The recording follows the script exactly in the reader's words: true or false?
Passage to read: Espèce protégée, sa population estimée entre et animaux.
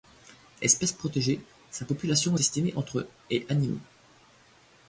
true